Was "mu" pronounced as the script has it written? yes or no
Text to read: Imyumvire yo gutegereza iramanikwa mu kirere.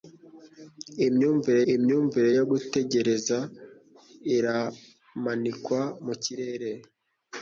yes